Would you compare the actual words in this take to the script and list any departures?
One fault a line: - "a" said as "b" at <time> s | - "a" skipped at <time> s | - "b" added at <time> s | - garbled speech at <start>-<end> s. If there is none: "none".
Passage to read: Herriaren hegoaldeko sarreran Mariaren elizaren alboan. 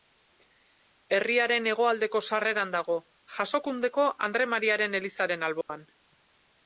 - "dago Jasokundeko Andre" added at 2.8 s